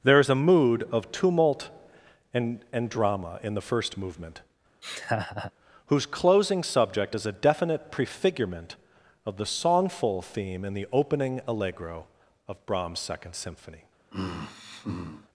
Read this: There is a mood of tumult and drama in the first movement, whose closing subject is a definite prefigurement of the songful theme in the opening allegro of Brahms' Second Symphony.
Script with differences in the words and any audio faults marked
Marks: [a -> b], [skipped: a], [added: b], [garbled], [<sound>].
There is a mood of tumult and [added: and] drama in the first movement, [laugh] whose closing subject is a definite prefigurement of the songful theme in the opening allegro of Brahms' Second Symphony. [sigh]